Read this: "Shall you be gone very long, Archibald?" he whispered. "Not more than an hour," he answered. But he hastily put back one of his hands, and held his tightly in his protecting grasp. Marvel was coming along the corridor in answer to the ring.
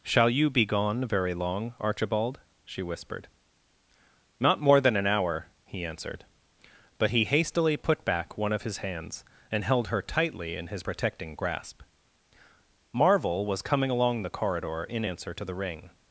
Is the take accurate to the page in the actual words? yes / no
no